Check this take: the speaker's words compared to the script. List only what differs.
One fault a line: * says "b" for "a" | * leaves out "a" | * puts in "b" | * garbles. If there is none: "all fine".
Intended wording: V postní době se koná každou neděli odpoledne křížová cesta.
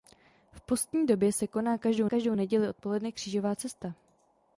* puts in "každou"